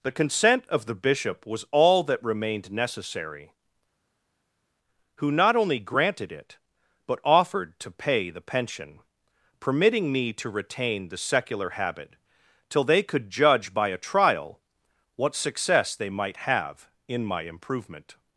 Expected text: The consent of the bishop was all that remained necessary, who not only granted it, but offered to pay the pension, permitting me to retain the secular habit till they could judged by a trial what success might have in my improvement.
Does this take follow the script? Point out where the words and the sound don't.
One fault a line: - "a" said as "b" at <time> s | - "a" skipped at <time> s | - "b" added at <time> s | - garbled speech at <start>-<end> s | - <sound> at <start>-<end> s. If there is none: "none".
- "judged" said as "judge" at 13.3 s
- "they" added at 15.9 s